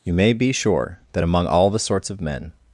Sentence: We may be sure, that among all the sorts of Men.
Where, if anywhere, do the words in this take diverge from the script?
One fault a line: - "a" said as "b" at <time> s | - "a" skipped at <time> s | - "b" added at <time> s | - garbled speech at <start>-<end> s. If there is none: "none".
- "We" said as "You" at 0.0 s